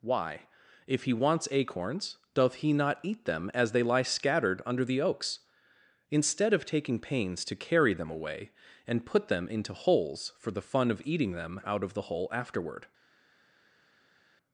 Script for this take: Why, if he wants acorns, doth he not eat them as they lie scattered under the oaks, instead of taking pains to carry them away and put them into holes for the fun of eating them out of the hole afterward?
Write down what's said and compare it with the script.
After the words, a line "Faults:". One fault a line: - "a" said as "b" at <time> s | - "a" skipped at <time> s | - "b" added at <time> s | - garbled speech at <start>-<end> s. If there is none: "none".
Why, if he wants acorns, doth he not eat them as they lie scattered under the oaks, instead of taking pains to carry them away and put them into holes for the fun of eating them out of the hole afterward?
Faults:
none